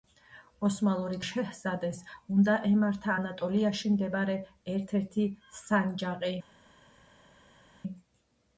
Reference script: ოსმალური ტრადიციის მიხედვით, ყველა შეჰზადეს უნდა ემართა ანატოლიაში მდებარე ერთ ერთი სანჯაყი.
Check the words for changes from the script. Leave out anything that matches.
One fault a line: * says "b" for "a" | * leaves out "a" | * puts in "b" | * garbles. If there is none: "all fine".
* leaves out "ტრადიციის მიხედვით ყველა"